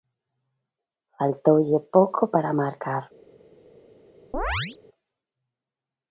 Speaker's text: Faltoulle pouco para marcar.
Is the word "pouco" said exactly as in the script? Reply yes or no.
yes